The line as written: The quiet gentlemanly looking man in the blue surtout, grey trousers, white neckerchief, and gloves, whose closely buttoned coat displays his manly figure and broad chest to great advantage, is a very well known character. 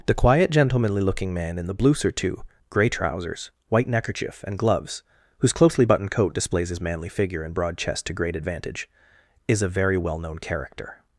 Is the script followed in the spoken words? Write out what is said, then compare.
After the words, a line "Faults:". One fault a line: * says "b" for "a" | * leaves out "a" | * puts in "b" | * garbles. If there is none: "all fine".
The quiet gentlemanly looking man in the blue surtout, grey trousers, white neckerchief, and gloves, whose closely buttoned coat displays his manly figure and broad chest to great advantage, is a very well known character.
Faults:
all fine